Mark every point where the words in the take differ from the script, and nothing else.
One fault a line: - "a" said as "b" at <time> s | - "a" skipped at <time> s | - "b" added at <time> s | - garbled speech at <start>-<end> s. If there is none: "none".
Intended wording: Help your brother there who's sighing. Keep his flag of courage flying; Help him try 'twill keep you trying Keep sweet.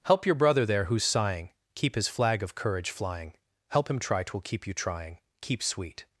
none